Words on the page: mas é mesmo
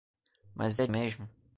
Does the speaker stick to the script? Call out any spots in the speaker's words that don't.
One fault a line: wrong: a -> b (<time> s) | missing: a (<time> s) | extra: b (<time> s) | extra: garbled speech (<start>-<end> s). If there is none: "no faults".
no faults